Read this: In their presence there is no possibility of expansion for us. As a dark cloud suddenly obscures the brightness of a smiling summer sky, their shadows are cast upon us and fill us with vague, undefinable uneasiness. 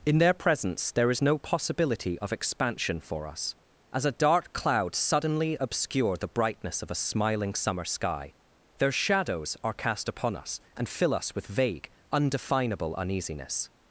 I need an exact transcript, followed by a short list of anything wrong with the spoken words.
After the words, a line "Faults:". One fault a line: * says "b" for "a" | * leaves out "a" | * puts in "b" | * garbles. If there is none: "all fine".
In their presence there is no possibility of expansion for us. As a dark cloud suddenly obscure the brightness of a smiling summer sky, their shadows are cast upon us and fill us with vague, undefinable uneasiness.
Faults:
* says "obscure" for "obscures"